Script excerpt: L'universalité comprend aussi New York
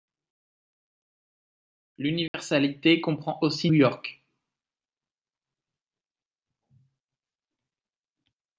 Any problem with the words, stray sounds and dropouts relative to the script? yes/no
yes